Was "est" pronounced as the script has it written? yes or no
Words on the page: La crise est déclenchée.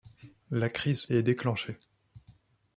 yes